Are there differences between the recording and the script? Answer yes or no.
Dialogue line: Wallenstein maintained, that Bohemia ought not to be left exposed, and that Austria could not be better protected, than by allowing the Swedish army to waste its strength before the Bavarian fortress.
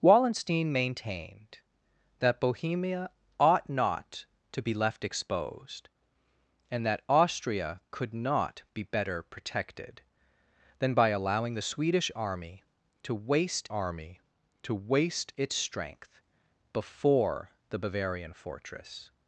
yes